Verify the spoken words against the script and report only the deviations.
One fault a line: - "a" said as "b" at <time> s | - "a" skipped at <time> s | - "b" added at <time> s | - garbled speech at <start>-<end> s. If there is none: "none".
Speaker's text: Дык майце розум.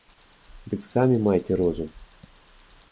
- "самі" added at 0.8 s